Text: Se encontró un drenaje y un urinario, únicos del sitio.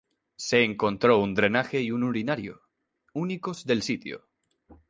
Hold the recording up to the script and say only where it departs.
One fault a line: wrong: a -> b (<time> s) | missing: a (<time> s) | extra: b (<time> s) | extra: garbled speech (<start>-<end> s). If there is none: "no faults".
no faults